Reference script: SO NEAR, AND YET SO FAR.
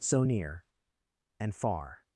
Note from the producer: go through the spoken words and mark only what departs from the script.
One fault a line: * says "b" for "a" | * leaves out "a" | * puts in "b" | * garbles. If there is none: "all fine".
* leaves out "YET SO"